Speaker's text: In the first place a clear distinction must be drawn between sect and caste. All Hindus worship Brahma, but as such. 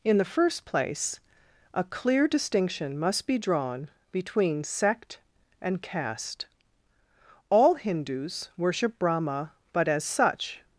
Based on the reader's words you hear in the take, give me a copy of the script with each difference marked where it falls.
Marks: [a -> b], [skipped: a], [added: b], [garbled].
In the first place a clear distinction must be drawn between sect and caste. All Hindus worship Brahma, but as such.